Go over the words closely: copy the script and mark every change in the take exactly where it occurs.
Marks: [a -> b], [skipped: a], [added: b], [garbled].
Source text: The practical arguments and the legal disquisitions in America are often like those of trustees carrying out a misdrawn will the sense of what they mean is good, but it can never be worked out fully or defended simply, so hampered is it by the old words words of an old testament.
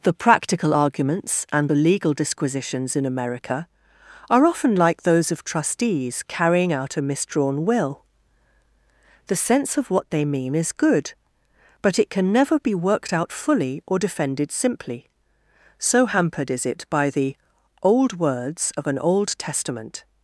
The practical arguments and the legal disquisitions in America are often like those of trustees carrying out a misdrawn will the sense of what they mean is good, but it can never be worked out fully or defended simply, so hampered is it by the old words [skipped: words] of an old testament.